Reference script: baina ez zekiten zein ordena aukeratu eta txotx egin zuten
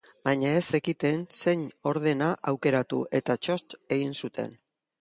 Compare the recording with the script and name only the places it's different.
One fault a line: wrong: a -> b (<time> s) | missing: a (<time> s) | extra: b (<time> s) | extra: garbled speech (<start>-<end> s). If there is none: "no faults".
no faults